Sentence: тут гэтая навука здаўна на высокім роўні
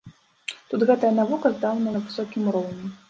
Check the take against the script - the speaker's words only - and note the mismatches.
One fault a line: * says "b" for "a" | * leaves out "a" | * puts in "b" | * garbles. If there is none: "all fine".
all fine